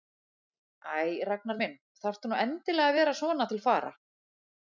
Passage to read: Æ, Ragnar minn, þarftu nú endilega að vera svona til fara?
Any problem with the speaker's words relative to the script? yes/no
no